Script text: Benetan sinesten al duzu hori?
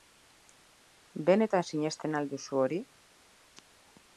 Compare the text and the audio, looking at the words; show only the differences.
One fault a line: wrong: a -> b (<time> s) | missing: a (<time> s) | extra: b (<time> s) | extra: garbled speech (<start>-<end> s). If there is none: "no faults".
no faults